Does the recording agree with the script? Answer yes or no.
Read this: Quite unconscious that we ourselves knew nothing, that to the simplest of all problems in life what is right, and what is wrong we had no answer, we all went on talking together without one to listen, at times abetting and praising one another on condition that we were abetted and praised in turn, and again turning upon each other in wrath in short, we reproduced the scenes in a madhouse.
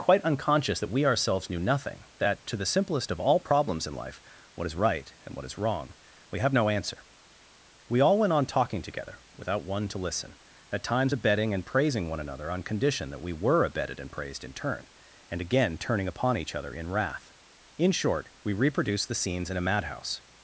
no